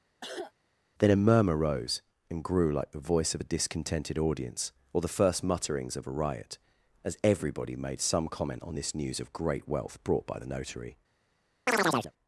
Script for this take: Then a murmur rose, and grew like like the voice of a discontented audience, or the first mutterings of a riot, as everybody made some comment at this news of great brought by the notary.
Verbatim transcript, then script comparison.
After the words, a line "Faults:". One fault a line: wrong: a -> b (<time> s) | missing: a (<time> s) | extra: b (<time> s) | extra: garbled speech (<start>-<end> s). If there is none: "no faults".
Then a murmur rose, and grew like the voice of a discontented audience, or the first mutterings of a riot, as everybody made some comment on this news of great wealth brought by the notary.
Faults:
missing: like (2.9 s)
wrong: at -> on (8.6 s)
extra: wealth (9.7 s)